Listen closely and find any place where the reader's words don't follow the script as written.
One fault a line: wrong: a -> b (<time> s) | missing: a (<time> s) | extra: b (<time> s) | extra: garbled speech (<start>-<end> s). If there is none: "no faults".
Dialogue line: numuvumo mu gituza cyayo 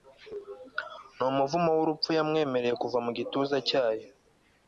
extra: wurupfu Yamwemereye kuva (1.8 s)